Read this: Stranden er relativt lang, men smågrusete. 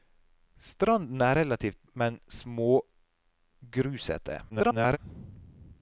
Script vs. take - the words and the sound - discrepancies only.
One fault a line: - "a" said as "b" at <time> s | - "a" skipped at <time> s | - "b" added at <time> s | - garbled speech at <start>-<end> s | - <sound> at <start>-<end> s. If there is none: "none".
- "lang" skipped at 1.9 s
- garbled speech at 4.5-5.0 s